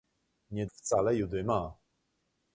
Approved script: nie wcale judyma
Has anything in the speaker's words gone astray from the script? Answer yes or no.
no